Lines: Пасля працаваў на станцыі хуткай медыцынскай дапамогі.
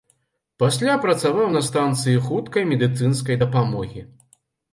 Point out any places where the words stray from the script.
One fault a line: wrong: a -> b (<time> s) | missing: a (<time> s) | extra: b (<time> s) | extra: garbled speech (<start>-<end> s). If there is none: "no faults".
no faults